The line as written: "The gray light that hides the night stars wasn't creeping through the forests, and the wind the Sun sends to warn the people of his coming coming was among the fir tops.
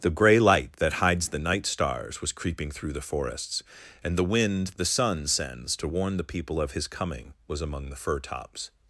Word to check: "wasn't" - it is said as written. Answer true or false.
false